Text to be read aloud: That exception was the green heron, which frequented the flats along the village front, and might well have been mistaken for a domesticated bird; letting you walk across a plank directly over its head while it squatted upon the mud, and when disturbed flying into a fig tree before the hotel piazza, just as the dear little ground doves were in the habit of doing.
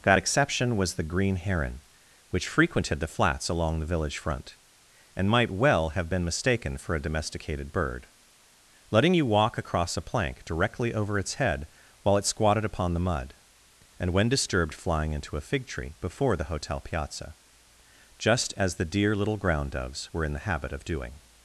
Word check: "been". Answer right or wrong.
right